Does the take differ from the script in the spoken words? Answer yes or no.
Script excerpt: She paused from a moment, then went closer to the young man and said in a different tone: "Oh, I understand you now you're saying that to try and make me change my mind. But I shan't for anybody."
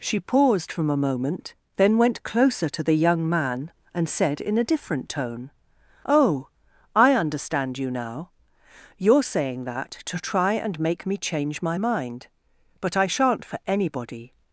no